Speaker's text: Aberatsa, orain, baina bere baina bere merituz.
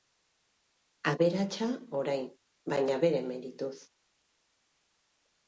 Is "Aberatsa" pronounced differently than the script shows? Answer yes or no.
no